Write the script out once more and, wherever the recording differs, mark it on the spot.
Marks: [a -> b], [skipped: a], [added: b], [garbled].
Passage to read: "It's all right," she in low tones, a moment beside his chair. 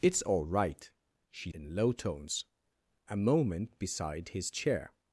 "It's all right," she in low tones, a moment beside his chair.